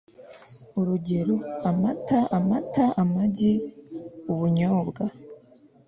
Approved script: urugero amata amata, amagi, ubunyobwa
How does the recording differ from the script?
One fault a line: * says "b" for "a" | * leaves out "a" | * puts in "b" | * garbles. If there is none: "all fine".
all fine